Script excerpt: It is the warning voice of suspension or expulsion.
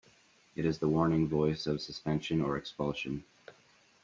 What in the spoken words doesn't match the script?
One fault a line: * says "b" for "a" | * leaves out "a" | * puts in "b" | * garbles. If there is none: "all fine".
all fine